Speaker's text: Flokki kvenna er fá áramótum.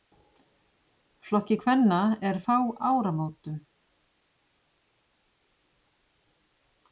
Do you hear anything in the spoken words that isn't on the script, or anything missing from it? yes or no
no